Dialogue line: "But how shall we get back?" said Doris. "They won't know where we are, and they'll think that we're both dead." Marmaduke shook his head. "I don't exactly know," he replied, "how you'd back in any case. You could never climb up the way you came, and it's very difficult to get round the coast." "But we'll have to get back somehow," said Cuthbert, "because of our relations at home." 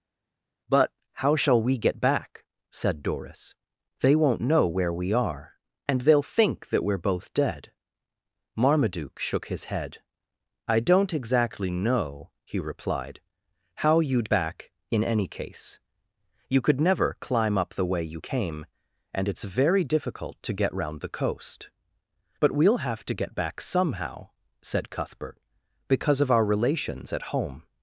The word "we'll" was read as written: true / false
true